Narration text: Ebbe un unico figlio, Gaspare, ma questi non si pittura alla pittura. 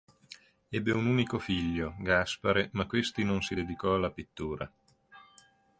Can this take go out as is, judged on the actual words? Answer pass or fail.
fail